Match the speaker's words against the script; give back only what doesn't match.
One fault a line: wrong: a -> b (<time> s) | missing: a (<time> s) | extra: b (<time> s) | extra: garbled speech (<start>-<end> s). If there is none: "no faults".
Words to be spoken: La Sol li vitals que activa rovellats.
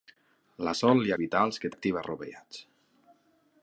no faults